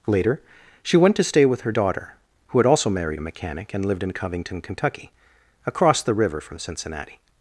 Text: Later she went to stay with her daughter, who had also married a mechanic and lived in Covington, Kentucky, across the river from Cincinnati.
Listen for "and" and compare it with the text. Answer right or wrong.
right